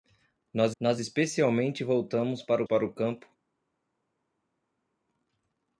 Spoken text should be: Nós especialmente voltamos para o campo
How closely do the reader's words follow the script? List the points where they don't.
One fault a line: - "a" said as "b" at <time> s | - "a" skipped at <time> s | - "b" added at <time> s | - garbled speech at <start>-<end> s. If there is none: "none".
- "nós" added at 0.8 s
- "para" added at 2.6 s